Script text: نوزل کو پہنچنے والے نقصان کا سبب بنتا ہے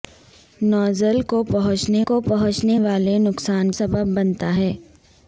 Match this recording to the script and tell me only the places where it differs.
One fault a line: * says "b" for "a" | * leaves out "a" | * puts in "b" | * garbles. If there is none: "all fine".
* puts in "کو پہنچنے"
* leaves out "کا"